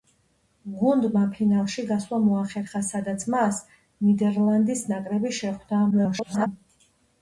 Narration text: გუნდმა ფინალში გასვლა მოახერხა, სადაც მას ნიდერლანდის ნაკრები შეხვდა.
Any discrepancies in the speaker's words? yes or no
yes